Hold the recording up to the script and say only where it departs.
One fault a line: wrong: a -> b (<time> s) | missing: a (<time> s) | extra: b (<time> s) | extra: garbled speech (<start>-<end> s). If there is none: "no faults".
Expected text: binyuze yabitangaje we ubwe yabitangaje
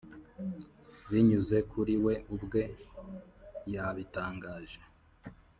wrong: yabitangaje -> kuri (1.7 s)